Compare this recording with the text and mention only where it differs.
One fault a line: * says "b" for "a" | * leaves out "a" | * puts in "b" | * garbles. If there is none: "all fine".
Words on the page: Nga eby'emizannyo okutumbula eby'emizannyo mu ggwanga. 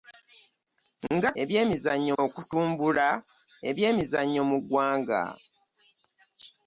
all fine